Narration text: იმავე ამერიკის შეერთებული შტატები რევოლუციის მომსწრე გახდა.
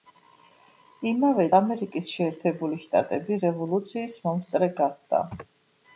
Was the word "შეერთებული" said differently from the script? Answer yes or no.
no